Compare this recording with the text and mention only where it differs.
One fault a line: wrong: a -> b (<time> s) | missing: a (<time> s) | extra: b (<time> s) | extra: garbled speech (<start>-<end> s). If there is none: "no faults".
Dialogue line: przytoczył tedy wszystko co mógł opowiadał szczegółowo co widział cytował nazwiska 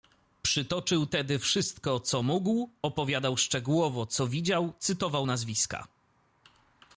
no faults